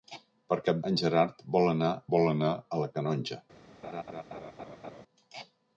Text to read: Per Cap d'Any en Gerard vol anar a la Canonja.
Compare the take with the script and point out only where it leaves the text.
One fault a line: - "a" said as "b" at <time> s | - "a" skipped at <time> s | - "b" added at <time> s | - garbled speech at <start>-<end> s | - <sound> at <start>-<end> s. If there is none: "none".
- "d'Any" skipped at 0.8 s
- "vol anar" added at 2.2 s
- laugh at 3.8-5.0 s